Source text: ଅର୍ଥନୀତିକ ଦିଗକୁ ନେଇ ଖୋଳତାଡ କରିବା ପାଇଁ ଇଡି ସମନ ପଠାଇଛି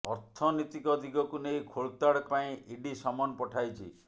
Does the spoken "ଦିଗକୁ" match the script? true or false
true